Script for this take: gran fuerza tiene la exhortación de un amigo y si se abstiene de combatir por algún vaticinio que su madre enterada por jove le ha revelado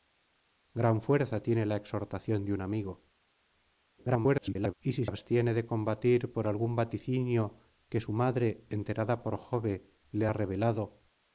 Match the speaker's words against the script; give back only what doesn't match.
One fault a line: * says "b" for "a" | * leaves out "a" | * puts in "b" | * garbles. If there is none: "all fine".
* garbles
* leaves out "se"